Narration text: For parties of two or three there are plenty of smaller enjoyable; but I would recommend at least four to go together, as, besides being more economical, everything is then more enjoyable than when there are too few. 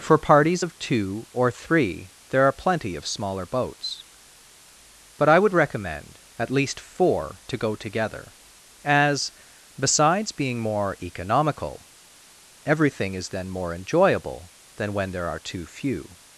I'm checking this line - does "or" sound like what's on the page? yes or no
yes